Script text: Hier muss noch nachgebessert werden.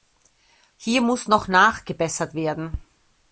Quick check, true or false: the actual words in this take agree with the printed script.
true